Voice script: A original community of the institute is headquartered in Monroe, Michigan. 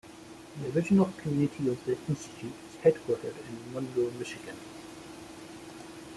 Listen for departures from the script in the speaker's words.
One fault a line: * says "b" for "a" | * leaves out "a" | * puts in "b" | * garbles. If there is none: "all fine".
* says "The" for "A"